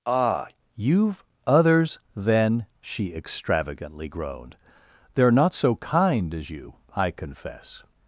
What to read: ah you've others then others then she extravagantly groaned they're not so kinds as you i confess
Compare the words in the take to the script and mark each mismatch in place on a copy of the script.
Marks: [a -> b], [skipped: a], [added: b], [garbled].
ah you've others then [skipped: others then] she extravagantly groaned they're not so [kinds -> kind] as you i confess